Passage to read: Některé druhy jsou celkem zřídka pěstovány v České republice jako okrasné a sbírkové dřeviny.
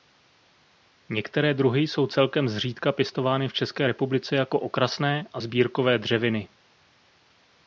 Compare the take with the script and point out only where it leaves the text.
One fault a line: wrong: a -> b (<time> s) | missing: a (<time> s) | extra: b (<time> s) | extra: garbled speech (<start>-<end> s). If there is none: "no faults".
no faults